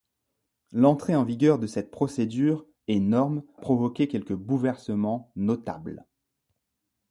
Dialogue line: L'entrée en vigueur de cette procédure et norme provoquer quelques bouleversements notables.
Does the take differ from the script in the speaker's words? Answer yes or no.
no